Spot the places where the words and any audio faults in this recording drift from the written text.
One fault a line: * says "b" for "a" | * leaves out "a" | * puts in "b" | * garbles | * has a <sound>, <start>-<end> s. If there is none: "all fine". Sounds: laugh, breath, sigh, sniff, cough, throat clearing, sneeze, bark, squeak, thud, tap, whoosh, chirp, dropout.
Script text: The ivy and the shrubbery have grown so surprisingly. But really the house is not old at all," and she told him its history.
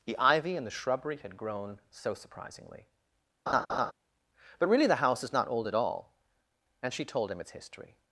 * says "had" for "have"
* has a laugh, 3.5-3.9 s